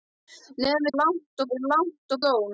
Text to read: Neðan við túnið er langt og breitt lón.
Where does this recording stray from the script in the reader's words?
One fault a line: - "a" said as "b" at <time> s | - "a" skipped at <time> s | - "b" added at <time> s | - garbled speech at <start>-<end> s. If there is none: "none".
- "túnið" said as "langt" at 1.0 s
- "breitt" skipped at 2.2 s